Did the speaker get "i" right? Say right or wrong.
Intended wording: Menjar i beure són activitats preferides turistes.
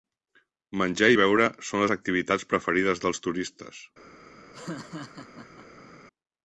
right